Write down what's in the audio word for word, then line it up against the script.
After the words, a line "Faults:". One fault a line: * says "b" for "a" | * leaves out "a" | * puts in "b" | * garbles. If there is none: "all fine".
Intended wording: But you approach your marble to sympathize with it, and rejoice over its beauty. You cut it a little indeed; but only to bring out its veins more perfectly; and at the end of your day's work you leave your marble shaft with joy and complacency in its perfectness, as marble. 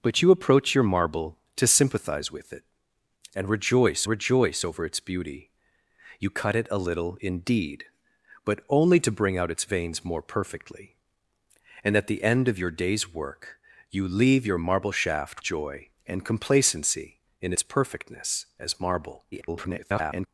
But you approach your marble to sympathize with it, and rejoice rejoice over its beauty. You cut it a little indeed; but only to bring out its veins more perfectly; and at the end of your day's work you leave your marble shaft joy and complacency in its perfectness, as marble. [garbled]
Faults:
* puts in "rejoice"
* leaves out "with"
* garbles